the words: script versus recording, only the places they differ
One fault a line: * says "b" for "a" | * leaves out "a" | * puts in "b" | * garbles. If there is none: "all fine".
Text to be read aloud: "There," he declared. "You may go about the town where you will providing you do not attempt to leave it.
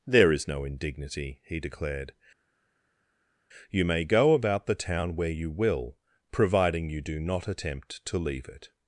* puts in "is no indignity"